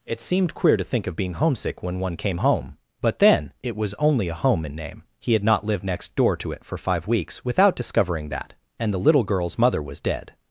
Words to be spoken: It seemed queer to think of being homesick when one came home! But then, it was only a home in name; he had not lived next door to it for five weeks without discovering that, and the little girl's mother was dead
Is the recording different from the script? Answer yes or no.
no